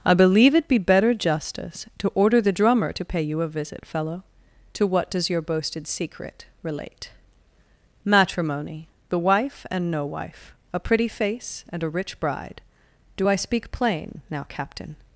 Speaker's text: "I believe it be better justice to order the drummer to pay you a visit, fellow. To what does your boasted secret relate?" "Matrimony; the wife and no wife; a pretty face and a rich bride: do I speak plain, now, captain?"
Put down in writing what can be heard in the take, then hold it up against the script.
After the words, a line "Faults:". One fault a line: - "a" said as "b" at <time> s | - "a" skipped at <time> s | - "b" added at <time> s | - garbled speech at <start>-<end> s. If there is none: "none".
"I believe it be better justice to order the drummer to pay you a visit, fellow. To what does your boasted secret relate?" "Matrimony; the wife and no wife; a pretty face and a rich bride: do I speak plain, now, captain?"
Faults:
none